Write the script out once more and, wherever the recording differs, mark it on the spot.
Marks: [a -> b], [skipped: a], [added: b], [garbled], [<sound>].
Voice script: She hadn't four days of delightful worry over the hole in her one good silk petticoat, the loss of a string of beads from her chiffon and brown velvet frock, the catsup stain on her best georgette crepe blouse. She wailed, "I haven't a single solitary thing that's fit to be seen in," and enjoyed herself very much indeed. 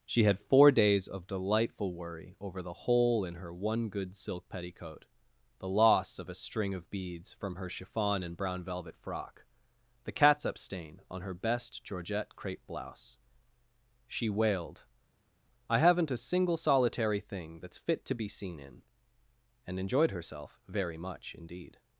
She [hadn't -> had] four days of delightful worry over the hole in her one good silk petticoat, the loss of a string of beads from her chiffon and brown velvet frock, the catsup stain on her best georgette crepe blouse. She wailed, "I haven't a single solitary thing that's fit to be seen in," and enjoyed herself very much indeed.